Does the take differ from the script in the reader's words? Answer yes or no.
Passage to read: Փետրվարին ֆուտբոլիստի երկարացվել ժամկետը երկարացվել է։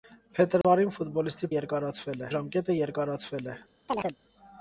no